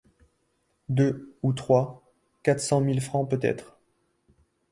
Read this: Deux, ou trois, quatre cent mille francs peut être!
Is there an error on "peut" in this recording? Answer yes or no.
no